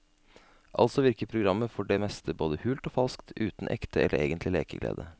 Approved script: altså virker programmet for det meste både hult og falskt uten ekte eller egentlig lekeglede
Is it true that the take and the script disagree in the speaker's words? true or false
false